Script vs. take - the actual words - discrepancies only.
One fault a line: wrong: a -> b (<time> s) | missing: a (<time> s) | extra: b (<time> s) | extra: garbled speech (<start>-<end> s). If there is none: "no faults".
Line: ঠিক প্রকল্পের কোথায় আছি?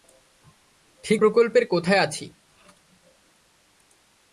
no faults